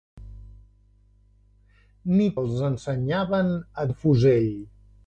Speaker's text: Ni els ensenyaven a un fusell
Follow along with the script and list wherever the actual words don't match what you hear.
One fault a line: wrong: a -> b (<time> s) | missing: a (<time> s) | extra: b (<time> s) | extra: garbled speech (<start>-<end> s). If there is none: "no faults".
no faults